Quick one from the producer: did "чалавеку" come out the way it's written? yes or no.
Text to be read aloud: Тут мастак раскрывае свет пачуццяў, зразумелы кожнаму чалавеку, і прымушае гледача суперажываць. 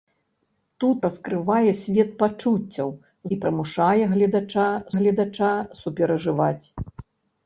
no